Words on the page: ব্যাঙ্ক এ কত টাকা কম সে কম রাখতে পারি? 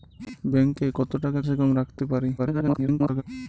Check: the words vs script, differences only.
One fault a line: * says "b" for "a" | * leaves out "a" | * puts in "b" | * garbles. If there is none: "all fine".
* leaves out "কম"
* garbles